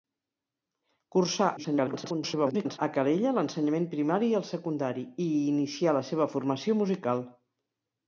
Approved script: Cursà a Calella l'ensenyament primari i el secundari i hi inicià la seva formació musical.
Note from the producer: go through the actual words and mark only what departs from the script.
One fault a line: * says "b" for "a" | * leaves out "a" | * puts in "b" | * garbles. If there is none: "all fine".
* garbles